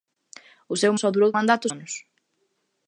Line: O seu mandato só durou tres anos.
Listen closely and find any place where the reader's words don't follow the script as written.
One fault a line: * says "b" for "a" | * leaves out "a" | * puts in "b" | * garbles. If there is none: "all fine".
* leaves out "mandato"
* says "mandato" for "tres"